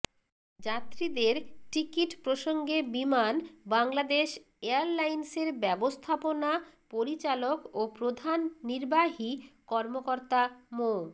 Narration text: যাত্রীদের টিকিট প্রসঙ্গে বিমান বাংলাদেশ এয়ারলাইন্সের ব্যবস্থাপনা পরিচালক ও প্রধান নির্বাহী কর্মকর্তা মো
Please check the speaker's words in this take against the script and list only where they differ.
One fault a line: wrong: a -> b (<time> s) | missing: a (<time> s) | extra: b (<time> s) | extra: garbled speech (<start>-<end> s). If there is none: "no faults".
no faults